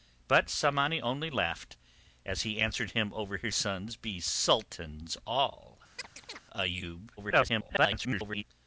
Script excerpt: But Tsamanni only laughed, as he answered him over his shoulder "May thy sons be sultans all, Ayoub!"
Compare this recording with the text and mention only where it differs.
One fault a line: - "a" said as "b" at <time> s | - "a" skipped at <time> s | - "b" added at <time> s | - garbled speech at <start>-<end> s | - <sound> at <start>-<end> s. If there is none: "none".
- "shoulder May thy" skipped at 3.5 s
- chirp at 6.0-6.4 s
- garbled speech at 7.2-8.4 s